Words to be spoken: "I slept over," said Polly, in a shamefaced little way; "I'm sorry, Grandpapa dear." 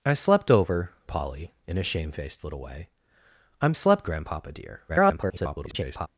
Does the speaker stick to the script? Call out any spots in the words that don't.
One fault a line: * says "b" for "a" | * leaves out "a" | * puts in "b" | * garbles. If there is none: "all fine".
* leaves out "said"
* says "slept" for "sorry"
* garbles